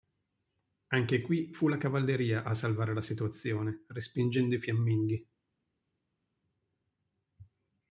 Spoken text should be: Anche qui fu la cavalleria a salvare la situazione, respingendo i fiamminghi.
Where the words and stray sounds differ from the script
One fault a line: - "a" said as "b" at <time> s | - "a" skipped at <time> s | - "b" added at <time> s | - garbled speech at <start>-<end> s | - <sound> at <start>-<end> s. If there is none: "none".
none